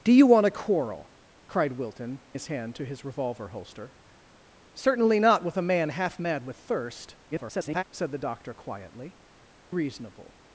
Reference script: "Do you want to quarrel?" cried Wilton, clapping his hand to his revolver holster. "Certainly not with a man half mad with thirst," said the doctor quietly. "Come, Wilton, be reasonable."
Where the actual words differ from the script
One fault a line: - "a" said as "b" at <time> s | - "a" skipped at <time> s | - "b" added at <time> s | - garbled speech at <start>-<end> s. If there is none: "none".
- "clapping" skipped at 2.2 s
- garbled speech at 7.3-7.8 s
- "Come Wilton be" skipped at 9.2 s